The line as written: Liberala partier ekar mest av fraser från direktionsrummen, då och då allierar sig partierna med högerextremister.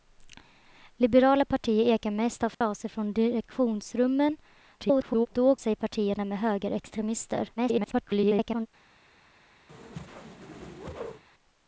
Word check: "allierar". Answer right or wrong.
wrong